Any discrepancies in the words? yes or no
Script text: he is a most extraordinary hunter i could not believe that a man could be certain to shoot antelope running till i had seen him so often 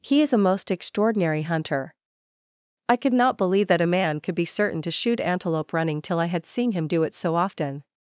yes